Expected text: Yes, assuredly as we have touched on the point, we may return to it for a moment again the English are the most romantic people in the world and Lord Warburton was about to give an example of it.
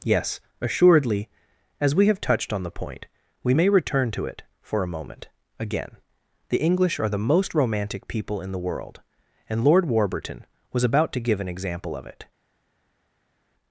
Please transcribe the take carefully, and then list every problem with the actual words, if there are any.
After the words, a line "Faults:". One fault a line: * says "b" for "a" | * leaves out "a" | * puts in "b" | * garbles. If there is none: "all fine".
Yes, assuredly as we have touched on the point, we may return to it for a moment again the English are the most romantic people in the world and Lord Warburton was about to give an example of it.
Faults:
all fine